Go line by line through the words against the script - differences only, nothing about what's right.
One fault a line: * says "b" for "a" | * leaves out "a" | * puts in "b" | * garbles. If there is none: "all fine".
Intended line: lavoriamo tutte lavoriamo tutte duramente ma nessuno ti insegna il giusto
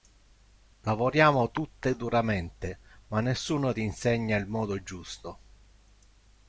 * leaves out "lavoriamo tutte"
* puts in "modo"